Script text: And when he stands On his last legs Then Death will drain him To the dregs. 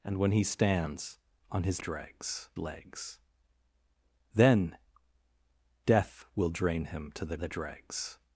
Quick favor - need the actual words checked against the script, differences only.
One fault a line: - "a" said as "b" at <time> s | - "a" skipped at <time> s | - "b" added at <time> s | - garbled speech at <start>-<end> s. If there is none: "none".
- "last" said as "dregs" at 1.8 s
- "the" added at 7.4 s